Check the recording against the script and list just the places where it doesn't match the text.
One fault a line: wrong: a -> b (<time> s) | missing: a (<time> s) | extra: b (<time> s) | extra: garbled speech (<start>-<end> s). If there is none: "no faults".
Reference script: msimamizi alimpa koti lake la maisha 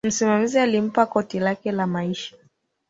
no faults